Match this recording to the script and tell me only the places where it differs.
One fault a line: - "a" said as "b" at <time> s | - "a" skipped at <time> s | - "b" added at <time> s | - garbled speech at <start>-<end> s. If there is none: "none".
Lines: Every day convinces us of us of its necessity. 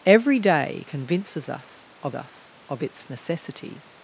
none